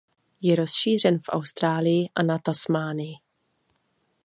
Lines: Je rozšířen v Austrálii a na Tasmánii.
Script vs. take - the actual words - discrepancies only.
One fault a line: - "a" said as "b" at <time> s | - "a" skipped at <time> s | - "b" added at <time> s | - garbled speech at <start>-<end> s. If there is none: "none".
none